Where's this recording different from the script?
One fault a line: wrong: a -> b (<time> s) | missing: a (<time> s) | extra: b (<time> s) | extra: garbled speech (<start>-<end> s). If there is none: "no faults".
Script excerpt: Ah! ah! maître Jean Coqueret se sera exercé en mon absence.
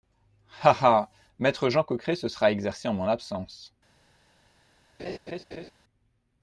no faults